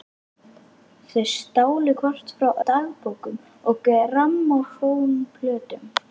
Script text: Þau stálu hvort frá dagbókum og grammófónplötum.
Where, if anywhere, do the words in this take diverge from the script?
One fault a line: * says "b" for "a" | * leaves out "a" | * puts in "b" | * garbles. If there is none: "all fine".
all fine